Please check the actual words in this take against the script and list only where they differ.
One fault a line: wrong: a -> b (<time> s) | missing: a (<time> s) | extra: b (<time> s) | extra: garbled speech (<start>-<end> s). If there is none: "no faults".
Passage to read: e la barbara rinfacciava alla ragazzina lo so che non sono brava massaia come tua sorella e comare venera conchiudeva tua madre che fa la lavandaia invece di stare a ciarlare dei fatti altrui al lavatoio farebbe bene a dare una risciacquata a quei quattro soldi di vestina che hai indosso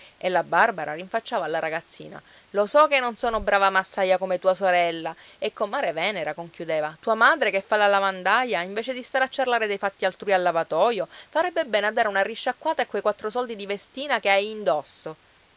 no faults